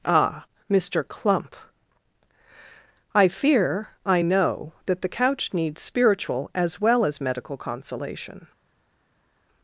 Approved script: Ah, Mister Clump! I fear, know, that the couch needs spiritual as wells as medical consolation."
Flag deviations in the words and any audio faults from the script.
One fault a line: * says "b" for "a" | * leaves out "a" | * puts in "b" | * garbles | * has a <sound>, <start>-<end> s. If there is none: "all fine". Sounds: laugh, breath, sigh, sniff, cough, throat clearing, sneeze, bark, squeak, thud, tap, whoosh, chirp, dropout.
* puts in "I"
* says "well" for "wells"